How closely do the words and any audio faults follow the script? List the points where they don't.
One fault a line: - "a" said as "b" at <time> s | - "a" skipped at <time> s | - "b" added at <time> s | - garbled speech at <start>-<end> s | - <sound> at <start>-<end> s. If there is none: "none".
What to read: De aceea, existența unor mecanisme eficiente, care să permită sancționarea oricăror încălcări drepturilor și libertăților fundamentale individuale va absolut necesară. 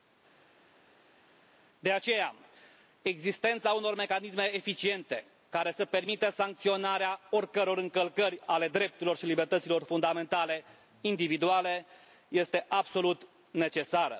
- "ale" added at 8.4 s
- "va" said as "este" at 12.3 s